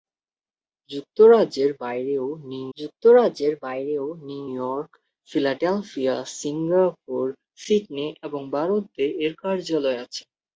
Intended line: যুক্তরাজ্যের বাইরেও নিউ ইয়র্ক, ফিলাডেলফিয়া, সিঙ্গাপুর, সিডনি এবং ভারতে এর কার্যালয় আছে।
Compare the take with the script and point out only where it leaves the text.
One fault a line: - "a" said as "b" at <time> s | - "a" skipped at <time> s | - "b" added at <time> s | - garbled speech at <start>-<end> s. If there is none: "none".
- "যুক্তরাজ্যের বাইরেও নিউ" added at 2.8 s